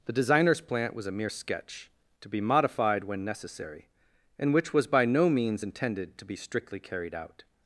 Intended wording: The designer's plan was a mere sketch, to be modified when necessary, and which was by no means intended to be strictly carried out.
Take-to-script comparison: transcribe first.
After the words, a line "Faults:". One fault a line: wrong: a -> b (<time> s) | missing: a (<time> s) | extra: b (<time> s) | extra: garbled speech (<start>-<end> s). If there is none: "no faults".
The designer's plant was a mere sketch, to be modified when necessary, and which was by no means intended to be strictly carried out.
Faults:
wrong: plan -> plant (0.6 s)